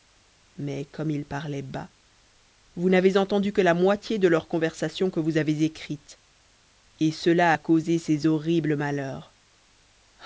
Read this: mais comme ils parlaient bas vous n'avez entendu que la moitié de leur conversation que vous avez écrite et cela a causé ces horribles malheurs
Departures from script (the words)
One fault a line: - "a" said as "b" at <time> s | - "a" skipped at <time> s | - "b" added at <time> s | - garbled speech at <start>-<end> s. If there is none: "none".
none